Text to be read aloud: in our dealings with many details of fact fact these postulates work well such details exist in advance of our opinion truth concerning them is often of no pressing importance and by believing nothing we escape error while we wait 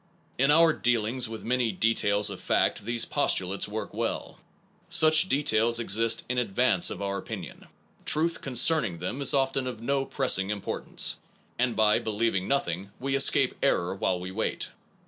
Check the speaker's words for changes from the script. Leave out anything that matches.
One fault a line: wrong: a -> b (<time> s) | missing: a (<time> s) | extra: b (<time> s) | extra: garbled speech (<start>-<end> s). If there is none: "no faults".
missing: fact (2.9 s)